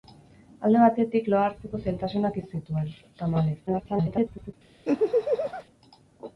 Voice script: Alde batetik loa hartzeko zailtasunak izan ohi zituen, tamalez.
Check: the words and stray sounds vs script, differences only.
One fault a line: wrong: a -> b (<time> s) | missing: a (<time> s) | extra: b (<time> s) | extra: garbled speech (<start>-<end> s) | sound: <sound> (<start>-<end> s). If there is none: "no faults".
missing: izan (2.4 s)
extra: garbled speech (3.7-4.5 s)
sound: laugh (4.8-5.6 s)